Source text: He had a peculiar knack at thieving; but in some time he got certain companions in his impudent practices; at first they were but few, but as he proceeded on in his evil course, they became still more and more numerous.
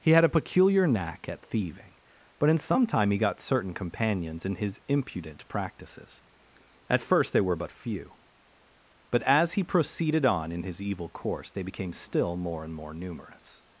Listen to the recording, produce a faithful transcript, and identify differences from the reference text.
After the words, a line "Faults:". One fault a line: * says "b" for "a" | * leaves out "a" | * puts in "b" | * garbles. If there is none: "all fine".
He had a peculiar knack at thieving; but in some time he got certain companions in his impudent practices; at first they were but few, but as he proceeded on in his evil course, they became still more and more numerous.
Faults:
all fine